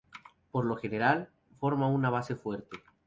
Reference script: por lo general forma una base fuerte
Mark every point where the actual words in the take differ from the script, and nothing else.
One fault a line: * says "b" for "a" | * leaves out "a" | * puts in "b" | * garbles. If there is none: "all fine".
all fine